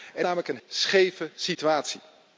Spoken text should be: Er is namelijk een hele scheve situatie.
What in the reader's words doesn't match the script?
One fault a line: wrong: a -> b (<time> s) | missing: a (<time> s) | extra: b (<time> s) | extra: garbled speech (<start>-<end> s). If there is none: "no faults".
missing: is (0.2 s)
missing: hele (0.6 s)